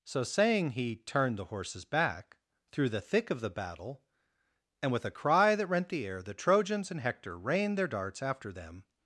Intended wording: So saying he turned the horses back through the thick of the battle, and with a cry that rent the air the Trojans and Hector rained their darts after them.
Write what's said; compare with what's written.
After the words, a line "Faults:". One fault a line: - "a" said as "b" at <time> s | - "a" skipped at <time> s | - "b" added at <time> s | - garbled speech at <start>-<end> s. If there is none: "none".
So saying he turned the horses back through the thick of the battle, and with a cry that rent the air the Trojans and Hector rained their darts after them.
Faults:
none